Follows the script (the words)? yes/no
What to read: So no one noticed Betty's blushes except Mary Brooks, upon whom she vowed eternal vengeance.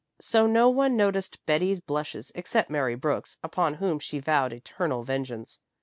yes